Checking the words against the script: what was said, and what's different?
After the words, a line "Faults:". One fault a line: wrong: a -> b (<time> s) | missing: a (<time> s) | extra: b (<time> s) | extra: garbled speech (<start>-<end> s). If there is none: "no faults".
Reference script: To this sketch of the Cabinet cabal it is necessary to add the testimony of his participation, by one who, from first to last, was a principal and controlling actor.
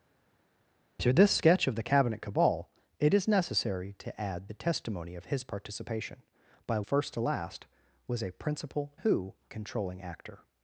To this sketch of the Cabinet cabal it is necessary to add the testimony of his participation, by first to last, was a principal who controlling actor.
Faults:
missing: one who from (6.8 s)
wrong: and -> who (9.0 s)